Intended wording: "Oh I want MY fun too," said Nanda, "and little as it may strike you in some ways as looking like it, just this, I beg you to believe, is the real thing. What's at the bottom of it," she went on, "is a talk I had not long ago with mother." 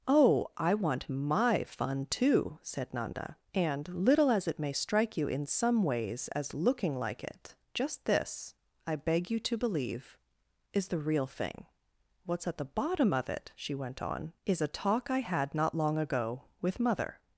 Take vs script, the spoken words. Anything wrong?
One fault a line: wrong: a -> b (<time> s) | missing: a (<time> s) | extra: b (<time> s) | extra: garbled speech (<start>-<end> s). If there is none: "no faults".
no faults